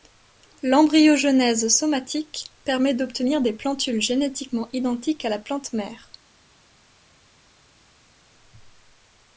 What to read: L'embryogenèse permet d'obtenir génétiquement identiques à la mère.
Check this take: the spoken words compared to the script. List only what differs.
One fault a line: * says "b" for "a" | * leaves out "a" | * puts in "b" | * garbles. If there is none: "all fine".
* puts in "somatique"
* puts in "des plantules"
* puts in "plante"